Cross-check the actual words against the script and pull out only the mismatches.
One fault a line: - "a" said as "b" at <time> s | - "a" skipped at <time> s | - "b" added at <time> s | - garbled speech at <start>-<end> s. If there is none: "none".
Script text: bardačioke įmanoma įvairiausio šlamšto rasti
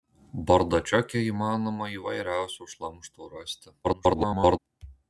- garbled speech at 3.8-4.6 s